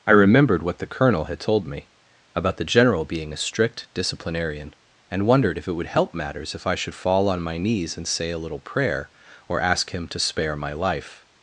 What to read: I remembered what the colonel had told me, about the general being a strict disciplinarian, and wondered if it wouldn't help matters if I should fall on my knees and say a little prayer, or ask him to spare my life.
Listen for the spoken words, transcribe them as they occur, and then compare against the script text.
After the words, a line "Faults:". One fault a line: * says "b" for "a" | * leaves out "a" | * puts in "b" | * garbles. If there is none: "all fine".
I remembered what the colonel had told me, about the general being a strict disciplinarian, and wondered if it would help matters if I should fall on my knees and say a little prayer, or ask him to spare my life.
Faults:
* says "would" for "wouldn't"